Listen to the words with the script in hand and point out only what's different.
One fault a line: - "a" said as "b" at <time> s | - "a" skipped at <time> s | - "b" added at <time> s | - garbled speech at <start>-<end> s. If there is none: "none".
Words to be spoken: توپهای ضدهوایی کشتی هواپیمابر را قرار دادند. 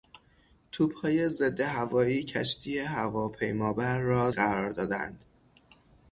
none